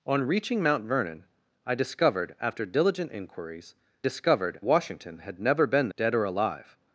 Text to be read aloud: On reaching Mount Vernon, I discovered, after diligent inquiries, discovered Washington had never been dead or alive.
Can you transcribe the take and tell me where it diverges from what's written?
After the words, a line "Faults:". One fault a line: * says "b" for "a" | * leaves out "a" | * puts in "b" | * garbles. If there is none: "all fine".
On reaching Mount Vernon, I discovered, after diligent inquiries, discovered Washington had never been dead or alive.
Faults:
all fine